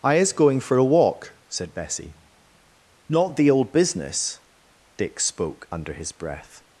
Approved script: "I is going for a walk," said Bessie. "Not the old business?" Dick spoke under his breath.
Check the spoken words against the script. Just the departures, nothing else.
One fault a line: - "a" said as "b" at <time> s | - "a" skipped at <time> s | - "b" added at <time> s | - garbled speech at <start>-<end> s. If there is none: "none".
none